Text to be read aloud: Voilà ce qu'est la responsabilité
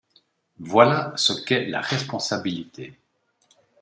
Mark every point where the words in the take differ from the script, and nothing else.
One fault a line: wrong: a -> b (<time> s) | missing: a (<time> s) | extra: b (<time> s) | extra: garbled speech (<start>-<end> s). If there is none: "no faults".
no faults